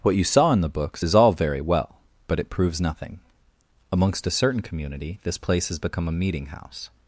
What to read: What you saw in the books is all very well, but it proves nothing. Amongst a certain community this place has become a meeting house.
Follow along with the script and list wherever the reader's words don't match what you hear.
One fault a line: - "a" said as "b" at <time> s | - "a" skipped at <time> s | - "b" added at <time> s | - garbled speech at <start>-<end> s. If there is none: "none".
none